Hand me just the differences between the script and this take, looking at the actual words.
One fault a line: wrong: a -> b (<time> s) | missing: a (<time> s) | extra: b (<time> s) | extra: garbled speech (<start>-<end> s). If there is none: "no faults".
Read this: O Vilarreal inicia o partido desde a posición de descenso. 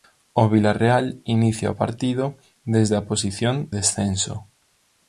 missing: de (3.7 s)